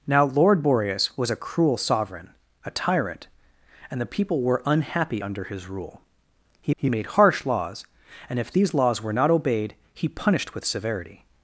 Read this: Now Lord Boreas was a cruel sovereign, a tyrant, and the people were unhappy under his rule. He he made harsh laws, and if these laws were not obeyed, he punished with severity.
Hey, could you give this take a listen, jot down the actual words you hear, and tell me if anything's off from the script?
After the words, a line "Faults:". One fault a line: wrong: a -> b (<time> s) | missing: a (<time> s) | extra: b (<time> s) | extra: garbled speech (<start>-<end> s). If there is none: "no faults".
Now Lord Boreas was a cruel sovereign, a tyrant, and the people were unhappy under his rule. He he made harsh laws, and if these laws were not obeyed, he punished with severity.
Faults:
no faults